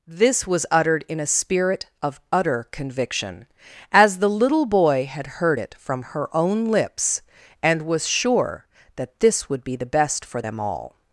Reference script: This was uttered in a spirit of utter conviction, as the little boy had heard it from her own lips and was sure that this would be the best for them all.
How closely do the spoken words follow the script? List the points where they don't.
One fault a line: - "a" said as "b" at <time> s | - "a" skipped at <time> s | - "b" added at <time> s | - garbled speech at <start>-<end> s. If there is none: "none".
none